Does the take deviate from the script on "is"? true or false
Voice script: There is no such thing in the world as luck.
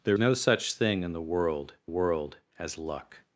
true